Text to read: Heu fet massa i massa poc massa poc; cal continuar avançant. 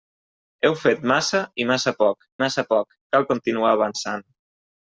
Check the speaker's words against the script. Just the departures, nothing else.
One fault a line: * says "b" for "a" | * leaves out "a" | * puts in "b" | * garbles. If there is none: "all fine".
all fine